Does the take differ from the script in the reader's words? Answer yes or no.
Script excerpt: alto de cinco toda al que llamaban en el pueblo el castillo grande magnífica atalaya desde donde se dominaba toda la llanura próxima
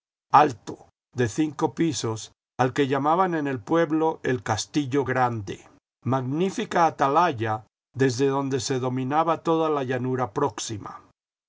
yes